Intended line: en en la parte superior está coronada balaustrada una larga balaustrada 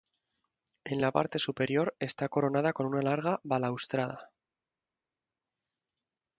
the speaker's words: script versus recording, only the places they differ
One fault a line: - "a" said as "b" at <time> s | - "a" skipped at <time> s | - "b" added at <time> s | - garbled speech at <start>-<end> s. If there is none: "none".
- "en" skipped at 1.0 s
- "balaustrada" said as "con" at 2.7 s